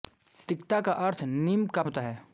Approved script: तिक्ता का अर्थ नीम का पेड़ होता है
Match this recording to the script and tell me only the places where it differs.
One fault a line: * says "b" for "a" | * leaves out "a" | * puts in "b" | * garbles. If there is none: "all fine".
* leaves out "पेड़"